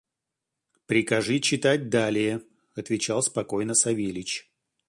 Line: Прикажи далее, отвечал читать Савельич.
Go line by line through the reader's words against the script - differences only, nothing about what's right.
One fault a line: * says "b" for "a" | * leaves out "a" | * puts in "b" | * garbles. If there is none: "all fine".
* puts in "читать"
* says "спокойно" for "читать"